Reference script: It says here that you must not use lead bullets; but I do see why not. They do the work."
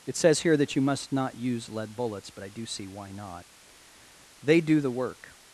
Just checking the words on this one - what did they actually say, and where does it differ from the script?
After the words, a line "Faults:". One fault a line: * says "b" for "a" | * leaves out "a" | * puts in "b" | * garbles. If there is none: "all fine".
It says here that you must not use lead bullets; but I do see why not. They do the work."
Faults:
all fine